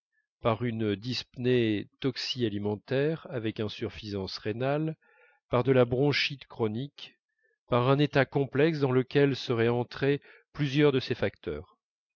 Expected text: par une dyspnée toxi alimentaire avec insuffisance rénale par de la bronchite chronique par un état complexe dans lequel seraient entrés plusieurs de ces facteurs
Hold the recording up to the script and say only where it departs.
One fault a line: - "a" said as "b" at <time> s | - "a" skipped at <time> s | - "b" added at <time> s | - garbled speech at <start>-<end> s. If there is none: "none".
none